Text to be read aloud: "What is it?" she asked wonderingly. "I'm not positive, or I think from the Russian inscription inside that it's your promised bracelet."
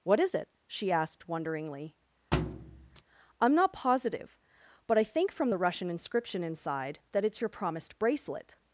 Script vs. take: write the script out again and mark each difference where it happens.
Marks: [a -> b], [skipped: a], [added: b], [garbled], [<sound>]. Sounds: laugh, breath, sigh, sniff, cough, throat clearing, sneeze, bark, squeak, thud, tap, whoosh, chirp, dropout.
"What is it?" she asked wonderingly. [thud] "I'm not positive, [or -> but] I think from the Russian inscription inside that it's your promised bracelet."